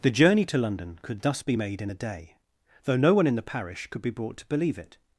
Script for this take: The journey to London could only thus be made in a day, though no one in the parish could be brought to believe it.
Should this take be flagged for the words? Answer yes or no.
yes